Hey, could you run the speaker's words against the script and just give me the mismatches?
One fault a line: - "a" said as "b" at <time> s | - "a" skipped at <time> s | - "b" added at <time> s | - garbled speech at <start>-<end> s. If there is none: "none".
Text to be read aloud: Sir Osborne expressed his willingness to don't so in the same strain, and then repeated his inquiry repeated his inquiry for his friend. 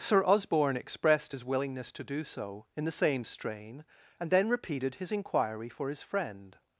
- "don't" said as "do" at 2.0 s
- "repeated his inquiry" skipped at 5.7 s